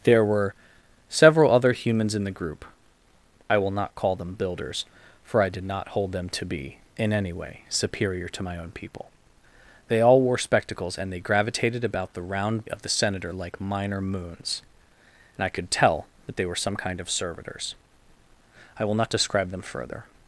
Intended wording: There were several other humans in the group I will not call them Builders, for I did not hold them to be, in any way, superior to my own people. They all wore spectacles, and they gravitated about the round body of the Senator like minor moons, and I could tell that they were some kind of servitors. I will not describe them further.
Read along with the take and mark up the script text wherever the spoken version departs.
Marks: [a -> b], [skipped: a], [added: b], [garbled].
There were several other humans in the group I will not call them Builders, for I did not hold them to be, in any way, superior to my own people. They all wore spectacles, and they gravitated about the round [skipped: body] of the Senator like minor moons, and I could tell that they were some kind of servitors. I will not describe them further.